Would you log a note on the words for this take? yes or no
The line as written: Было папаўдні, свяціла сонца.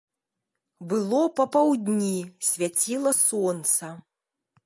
no